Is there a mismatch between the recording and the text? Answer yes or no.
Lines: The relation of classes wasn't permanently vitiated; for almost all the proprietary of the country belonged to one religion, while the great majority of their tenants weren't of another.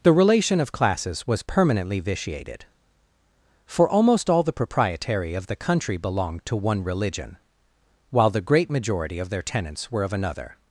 yes